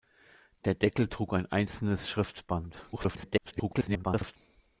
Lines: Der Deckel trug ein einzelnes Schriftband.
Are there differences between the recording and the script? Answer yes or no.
yes